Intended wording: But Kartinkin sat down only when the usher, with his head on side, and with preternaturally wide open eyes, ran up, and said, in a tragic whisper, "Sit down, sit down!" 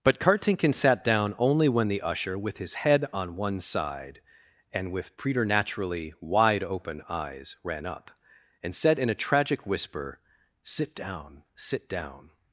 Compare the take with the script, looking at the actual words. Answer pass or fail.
fail